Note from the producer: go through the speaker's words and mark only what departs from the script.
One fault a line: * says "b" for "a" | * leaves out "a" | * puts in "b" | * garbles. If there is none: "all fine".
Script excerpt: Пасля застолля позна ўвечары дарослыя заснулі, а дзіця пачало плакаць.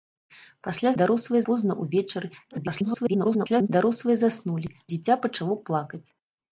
* says "дарослыя" for "застолля"
* garbles
* leaves out "а"